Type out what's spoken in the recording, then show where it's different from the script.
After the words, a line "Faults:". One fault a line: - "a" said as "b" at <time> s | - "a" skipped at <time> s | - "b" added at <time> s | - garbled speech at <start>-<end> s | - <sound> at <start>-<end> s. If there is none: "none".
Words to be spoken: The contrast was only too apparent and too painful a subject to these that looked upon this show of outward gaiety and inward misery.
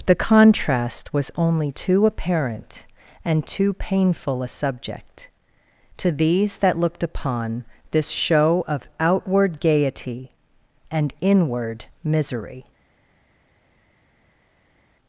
The contrast was only too apparent and too painful a subject to these that looked upon this show of outward gaiety and inward misery.
Faults:
none